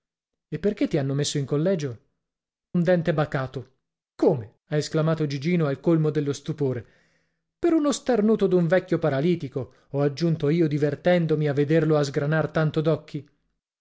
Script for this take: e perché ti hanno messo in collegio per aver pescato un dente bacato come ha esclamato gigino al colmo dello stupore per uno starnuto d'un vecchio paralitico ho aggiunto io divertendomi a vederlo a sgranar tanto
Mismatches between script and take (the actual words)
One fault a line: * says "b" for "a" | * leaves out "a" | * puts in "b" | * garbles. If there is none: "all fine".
* leaves out "per aver pescato"